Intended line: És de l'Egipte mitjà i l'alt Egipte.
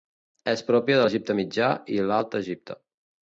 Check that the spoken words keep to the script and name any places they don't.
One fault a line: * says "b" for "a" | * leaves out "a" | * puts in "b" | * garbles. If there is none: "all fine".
* puts in "pròpia"